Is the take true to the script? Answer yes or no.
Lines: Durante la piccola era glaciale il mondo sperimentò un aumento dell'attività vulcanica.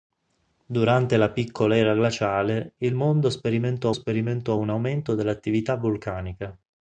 no